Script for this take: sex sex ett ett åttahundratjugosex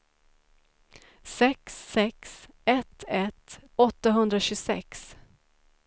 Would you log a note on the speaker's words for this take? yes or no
no